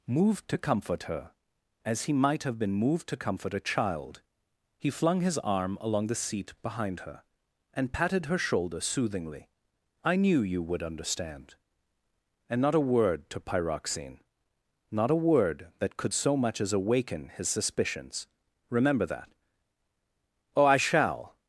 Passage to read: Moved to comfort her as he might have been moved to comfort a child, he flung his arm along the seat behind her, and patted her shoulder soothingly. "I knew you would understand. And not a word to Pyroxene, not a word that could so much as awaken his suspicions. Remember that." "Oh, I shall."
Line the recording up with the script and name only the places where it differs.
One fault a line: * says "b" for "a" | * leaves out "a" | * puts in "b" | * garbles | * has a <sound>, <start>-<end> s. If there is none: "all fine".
all fine